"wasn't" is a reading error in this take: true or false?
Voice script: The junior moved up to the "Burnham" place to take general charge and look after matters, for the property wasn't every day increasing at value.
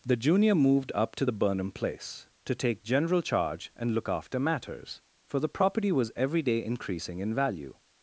true